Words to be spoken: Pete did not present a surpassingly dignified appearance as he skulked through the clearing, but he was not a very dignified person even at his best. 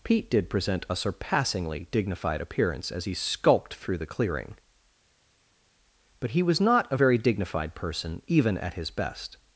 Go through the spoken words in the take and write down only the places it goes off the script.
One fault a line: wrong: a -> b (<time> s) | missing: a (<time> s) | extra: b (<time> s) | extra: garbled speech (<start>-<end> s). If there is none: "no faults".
missing: not (0.5 s)